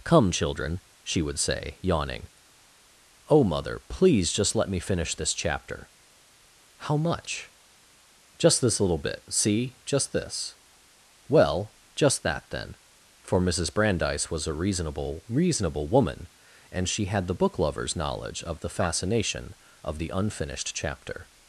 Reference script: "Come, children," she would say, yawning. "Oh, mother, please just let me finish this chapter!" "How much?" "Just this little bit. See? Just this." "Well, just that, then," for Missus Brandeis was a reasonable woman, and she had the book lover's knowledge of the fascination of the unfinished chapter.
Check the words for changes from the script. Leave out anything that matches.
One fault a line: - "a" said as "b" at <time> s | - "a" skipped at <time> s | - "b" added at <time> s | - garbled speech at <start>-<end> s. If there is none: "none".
- "reasonable" added at 15.3 s